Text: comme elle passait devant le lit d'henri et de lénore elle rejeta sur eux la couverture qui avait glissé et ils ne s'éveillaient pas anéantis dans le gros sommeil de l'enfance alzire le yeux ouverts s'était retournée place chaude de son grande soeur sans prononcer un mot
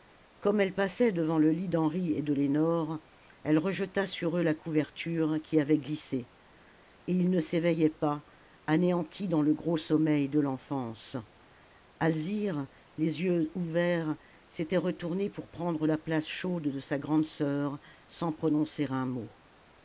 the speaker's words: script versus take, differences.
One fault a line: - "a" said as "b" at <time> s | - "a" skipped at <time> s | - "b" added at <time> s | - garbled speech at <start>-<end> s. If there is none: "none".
- "le" said as "les" at 13.0 s
- "pour prendre la" added at 15.3 s
- "son" said as "sa" at 16.8 s